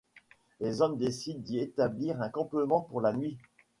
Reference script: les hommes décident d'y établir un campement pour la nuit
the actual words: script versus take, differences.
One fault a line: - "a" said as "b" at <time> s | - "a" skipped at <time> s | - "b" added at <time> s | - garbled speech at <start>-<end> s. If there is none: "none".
none